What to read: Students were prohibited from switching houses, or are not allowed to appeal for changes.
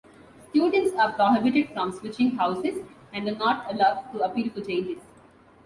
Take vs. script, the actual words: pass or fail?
fail